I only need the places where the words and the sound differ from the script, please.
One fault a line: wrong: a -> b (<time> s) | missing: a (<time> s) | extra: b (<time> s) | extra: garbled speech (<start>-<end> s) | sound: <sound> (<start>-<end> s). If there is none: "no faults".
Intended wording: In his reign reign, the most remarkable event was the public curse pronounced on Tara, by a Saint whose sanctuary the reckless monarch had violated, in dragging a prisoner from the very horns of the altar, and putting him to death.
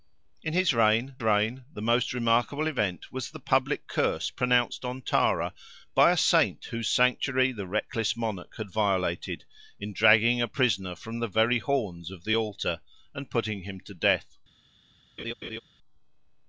sound: laugh (15.2-15.6 s)